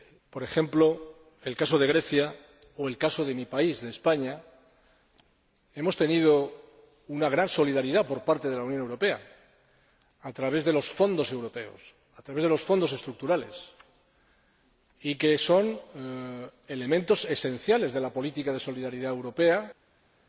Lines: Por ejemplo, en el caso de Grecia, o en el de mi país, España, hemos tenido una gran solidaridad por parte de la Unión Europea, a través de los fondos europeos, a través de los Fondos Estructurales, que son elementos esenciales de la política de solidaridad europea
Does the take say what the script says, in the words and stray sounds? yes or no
no